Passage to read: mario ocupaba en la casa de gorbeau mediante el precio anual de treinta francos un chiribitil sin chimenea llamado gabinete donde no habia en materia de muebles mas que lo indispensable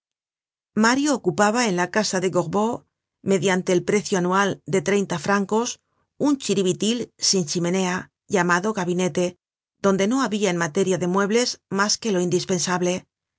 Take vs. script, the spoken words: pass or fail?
pass